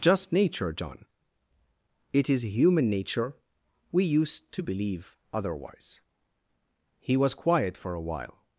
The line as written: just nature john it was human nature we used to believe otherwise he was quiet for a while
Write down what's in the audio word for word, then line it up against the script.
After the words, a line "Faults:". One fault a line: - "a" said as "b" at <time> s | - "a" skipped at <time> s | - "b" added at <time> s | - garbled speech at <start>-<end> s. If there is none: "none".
just nature john it is human nature we used to believe otherwise he was quiet for a while
Faults:
- "was" said as "is" at 2.3 s